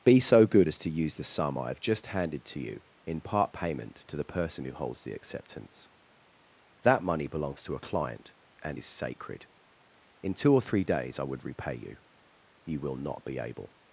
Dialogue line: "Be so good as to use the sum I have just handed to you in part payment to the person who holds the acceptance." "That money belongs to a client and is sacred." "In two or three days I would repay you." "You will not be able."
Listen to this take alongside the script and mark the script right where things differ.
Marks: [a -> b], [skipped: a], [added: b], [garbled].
"Be so good as to use the sum I have just handed to you in part payment to the person who holds the acceptance." "That money belongs to a client and is sacred." "In two or three days I would repay you." "You will not be able."